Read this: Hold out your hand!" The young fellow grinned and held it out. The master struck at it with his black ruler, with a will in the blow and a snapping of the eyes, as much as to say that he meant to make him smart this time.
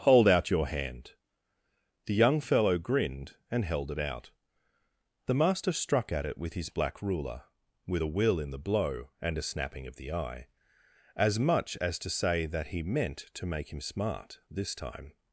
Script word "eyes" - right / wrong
wrong